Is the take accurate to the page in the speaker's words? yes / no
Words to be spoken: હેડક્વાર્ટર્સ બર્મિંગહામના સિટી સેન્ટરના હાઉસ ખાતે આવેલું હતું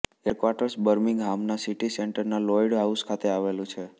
no